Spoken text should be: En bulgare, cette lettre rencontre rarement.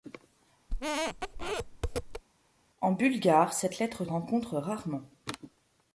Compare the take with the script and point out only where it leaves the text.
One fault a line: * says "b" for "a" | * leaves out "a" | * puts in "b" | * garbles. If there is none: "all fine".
all fine